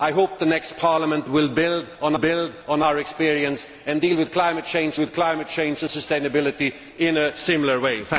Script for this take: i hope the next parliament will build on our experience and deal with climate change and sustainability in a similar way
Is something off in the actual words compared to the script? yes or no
yes